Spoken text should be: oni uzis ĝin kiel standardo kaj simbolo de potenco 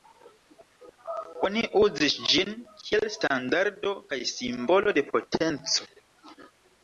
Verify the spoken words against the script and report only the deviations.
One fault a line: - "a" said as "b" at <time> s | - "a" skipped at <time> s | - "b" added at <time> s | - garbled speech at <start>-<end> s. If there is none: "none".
none